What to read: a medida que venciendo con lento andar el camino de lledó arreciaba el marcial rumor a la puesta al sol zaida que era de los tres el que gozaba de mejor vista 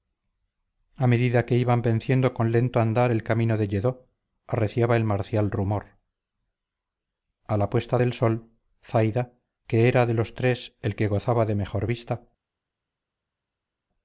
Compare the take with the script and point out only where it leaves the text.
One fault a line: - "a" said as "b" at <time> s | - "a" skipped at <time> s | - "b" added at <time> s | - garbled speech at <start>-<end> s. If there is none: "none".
- "iban" added at 1.6 s
- "al" said as "del" at 8.0 s